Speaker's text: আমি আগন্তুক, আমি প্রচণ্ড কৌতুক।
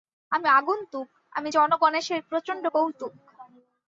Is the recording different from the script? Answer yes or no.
yes